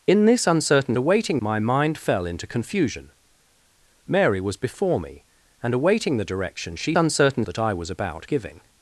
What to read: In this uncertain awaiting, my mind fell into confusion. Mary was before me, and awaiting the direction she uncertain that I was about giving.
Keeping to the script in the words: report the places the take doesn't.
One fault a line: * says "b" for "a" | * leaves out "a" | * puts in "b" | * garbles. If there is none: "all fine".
all fine